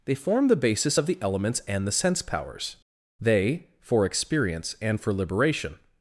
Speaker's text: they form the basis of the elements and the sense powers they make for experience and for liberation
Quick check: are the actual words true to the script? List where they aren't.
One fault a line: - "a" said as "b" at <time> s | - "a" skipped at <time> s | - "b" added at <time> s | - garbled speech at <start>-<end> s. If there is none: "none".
- "make" skipped at 3.7 s